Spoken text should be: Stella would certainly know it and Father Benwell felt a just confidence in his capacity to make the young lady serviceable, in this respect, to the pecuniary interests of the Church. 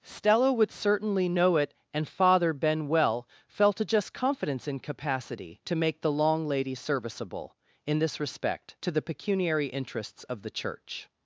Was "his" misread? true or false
true